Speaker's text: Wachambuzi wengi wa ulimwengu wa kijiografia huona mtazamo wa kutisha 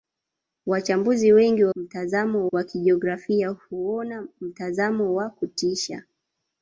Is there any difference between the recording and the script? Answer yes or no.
yes